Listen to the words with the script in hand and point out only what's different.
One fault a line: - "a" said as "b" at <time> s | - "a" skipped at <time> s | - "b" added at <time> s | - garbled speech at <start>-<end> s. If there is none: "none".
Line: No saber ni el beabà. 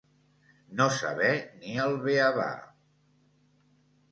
none